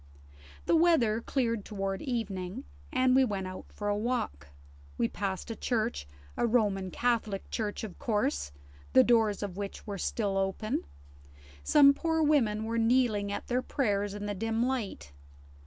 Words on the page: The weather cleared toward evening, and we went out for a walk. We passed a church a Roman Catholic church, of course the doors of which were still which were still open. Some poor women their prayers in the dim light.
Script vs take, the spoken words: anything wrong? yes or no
yes